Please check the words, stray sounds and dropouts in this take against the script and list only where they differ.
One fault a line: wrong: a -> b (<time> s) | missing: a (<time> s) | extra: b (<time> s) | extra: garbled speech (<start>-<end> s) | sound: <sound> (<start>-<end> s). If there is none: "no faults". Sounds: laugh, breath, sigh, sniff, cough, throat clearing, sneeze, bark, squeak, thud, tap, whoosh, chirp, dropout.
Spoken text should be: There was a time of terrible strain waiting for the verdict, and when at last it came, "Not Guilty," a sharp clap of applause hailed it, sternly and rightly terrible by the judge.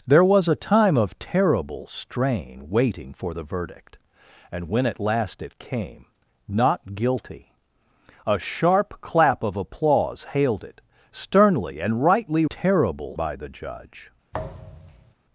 sound: thud (14.3-15.1 s)